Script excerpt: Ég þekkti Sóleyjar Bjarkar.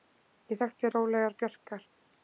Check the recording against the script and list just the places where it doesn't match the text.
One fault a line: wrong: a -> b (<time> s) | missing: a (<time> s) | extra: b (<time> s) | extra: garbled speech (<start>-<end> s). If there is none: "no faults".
no faults